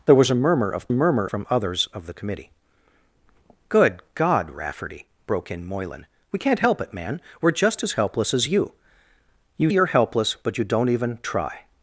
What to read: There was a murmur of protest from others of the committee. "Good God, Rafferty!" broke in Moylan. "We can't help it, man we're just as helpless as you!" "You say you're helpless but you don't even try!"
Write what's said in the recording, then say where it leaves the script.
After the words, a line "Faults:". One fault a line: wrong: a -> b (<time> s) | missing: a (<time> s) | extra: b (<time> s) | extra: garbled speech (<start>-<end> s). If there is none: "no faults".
There was a murmur of murmur from others of the committee. "Good God, Rafferty!" broke in Moylan. "We can't help it, man we're just as helpless as you!" "You you're helpless but you don't even try!"
Faults:
wrong: protest -> murmur (0.9 s)
missing: say (9.7 s)